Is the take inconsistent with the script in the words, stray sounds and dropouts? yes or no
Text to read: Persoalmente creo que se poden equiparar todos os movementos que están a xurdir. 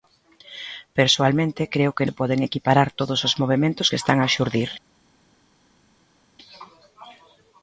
no